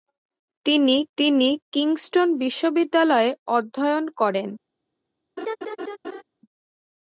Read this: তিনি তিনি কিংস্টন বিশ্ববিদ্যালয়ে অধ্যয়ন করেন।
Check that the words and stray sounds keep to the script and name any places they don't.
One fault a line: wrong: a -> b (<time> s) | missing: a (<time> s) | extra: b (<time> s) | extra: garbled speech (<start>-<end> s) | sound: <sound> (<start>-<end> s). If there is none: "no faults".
sound: laugh (5.4-6.2 s)